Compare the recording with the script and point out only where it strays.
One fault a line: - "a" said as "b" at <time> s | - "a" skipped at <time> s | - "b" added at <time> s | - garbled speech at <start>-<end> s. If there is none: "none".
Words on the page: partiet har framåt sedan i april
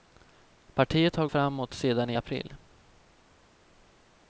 none